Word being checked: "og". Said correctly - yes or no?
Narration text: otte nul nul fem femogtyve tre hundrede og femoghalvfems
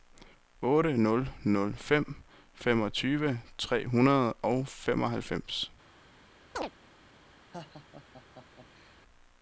yes